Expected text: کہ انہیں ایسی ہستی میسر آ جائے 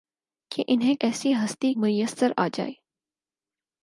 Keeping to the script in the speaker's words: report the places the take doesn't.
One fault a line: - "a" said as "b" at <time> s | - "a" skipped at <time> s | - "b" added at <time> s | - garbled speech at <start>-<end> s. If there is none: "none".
none